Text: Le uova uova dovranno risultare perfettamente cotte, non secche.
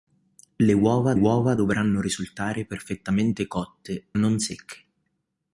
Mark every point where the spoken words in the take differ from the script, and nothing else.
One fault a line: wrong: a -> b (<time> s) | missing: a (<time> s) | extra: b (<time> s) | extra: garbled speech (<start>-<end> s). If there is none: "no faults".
no faults